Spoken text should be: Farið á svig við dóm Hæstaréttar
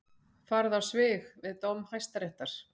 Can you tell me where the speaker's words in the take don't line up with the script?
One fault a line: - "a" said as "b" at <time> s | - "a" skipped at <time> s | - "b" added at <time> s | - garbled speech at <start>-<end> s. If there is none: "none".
none